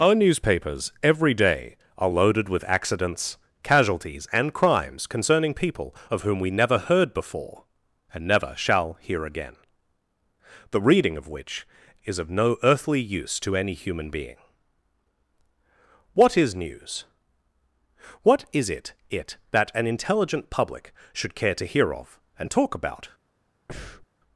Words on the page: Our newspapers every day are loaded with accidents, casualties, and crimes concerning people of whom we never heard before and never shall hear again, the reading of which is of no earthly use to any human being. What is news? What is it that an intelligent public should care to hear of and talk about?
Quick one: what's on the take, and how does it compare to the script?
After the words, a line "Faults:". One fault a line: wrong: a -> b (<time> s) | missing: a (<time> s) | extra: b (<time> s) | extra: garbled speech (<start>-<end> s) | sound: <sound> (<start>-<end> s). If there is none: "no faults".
Our newspapers every day are loaded with accidents, casualties, and crimes concerning people of whom we never heard before and never shall hear again, the reading of which is of no earthly use to any human being. What is news? What is it it that an intelligent public should care to hear of and talk about?
Faults:
extra: it (19.1 s)
sound: breath (23.7-24.1 s)